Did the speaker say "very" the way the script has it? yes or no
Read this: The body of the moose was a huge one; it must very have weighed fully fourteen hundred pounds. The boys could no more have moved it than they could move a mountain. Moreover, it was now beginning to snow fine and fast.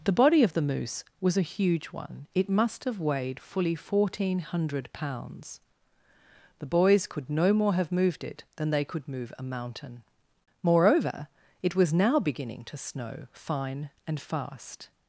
no